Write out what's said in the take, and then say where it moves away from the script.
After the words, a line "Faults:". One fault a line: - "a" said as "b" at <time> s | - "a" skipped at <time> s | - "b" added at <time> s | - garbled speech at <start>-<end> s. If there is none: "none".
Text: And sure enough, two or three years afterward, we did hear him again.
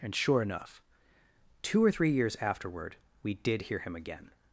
And sure enough, two or three years afterward, we did hear him again.
Faults:
none